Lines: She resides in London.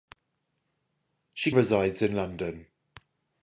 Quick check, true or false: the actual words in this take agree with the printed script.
true